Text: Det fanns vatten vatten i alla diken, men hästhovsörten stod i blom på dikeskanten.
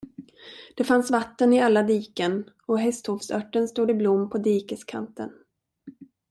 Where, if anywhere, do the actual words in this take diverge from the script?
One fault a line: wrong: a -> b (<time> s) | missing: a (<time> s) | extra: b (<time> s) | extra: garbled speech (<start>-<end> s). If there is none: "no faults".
missing: vatten (1.5 s)
wrong: men -> och (2.6 s)